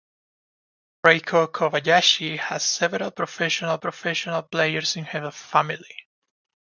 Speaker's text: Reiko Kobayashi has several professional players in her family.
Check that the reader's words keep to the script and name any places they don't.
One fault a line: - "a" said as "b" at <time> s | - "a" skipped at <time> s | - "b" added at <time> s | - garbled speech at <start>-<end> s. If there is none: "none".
- "professional" added at 3.8 s